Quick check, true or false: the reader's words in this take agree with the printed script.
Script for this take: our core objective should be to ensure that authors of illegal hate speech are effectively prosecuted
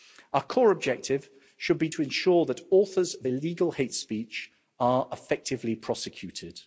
true